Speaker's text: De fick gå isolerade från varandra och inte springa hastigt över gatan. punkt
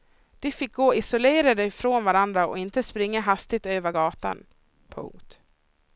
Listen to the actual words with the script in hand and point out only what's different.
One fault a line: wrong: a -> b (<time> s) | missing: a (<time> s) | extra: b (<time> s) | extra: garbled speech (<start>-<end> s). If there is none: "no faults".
no faults